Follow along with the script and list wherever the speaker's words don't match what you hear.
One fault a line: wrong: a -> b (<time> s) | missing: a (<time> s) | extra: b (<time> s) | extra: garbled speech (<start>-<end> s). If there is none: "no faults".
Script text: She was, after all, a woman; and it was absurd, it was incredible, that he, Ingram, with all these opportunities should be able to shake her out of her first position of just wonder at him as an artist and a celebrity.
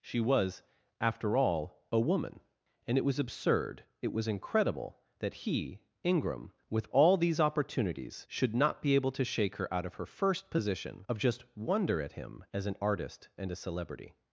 extra: not (8.5 s)